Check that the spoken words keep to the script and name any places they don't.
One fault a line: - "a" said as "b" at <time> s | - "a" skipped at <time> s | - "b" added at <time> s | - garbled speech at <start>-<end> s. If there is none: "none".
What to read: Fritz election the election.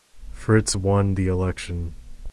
- "election" said as "won" at 0.7 s